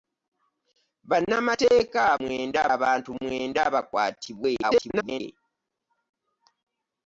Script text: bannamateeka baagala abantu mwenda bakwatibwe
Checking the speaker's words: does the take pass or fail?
fail